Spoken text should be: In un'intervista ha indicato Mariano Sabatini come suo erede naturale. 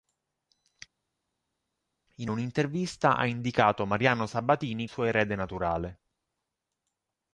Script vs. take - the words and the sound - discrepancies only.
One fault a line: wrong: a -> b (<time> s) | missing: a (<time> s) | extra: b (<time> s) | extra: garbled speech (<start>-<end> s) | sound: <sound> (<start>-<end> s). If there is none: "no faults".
missing: come (4.9 s)